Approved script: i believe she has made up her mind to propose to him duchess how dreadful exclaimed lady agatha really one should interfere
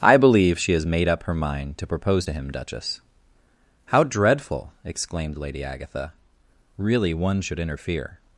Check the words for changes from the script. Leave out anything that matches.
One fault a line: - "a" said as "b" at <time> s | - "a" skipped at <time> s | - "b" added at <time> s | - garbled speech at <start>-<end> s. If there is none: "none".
none